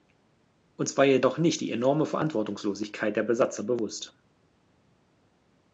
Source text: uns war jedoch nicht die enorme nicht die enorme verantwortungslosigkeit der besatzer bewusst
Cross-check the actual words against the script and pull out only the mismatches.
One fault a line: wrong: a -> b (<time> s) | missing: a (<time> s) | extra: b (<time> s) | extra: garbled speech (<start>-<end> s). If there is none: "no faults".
missing: nicht die enorme (2.1 s)